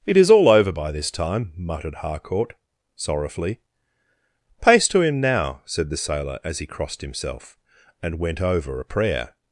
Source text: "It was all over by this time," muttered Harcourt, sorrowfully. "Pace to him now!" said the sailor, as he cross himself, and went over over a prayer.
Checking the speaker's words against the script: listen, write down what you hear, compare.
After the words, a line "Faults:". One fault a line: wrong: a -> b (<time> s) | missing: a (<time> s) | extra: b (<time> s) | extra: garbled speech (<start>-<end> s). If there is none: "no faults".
"It is all over by this time," muttered Harcourt, sorrowfully. "Pace to him now!" said the sailor, as he crossed himself, and went over a prayer.
Faults:
wrong: was -> is (0.2 s)
wrong: cross -> crossed (6.7 s)
missing: over (8.8 s)